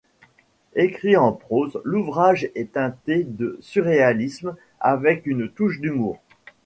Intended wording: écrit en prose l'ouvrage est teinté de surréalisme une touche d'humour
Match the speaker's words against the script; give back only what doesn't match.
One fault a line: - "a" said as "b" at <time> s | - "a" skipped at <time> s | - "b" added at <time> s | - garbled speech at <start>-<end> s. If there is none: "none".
- "avec" added at 4.8 s